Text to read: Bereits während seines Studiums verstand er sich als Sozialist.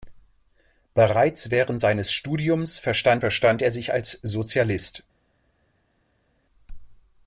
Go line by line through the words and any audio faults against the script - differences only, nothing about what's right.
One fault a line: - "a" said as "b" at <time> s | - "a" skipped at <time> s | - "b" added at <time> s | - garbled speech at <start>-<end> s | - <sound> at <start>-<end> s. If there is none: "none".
- "verstand" added at 3.1 s